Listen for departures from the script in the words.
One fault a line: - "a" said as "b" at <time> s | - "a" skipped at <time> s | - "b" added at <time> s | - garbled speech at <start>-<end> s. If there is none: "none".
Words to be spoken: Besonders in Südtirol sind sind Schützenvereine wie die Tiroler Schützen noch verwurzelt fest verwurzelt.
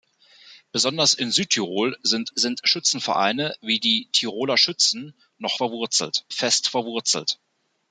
none